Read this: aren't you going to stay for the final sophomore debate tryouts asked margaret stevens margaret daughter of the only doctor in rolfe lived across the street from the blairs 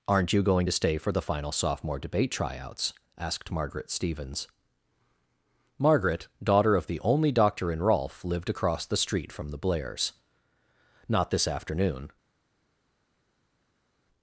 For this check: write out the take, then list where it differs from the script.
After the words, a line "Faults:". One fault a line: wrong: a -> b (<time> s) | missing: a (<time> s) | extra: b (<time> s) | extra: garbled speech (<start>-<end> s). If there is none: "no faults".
aren't you going to stay for the final sophomore debate tryouts asked margaret stevens margaret daughter of the only doctor in rolfe lived across the street from the blairs not this afternoon
Faults:
extra: not this afternoon (11.1 s)